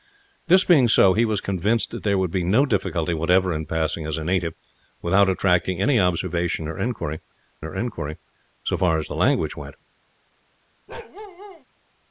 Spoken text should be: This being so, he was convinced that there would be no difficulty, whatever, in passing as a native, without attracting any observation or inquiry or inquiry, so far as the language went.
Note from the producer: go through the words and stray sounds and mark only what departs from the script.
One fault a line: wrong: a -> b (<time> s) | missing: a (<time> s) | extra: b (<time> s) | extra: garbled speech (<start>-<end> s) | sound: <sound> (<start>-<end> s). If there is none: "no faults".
sound: bark (10.9-11.6 s)